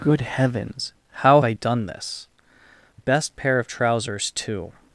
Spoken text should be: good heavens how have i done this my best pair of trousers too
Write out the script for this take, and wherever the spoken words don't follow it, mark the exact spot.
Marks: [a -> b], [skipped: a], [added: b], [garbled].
good heavens how [skipped: have] i done this [skipped: my] best pair of trousers too